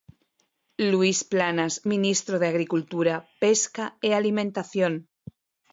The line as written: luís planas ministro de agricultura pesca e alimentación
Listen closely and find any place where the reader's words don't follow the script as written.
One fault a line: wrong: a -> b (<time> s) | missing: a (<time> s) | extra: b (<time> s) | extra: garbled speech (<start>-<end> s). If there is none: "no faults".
no faults